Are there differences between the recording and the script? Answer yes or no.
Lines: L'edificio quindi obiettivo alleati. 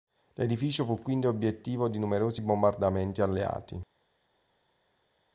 yes